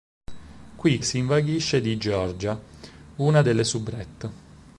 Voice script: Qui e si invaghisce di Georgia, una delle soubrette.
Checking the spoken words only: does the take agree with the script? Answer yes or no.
yes